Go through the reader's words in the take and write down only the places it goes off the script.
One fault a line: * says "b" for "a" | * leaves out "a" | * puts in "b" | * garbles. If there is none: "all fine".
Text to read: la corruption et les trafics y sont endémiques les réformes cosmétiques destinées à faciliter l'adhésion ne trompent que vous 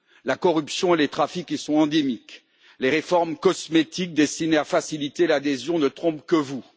all fine